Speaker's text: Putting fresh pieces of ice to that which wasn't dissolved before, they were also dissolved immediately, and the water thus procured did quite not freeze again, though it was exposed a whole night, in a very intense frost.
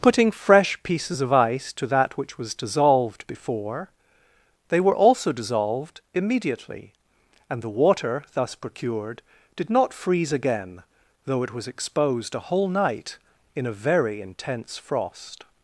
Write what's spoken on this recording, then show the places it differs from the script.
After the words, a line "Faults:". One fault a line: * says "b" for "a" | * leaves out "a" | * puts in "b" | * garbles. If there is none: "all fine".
Putting fresh pieces of ice to that which was dissolved before, they were also dissolved immediately, and the water thus procured did not freeze again, though it was exposed a whole night, in a very intense frost.
Faults:
* says "was" for "wasn't"
* leaves out "quite"